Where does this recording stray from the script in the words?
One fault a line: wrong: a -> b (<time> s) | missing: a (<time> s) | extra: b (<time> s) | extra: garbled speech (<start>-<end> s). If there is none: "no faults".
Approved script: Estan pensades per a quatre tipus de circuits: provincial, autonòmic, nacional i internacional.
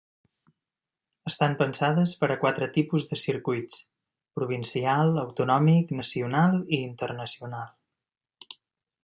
no faults